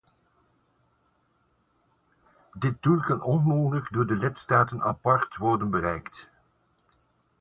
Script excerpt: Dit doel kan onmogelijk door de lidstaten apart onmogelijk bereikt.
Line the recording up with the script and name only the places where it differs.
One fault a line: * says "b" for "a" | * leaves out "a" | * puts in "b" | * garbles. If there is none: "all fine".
* says "worden" for "onmogelijk"